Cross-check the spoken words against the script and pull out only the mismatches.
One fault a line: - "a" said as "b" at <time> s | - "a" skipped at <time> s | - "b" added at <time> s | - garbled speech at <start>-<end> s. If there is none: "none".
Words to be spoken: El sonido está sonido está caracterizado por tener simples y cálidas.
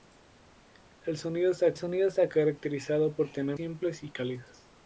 none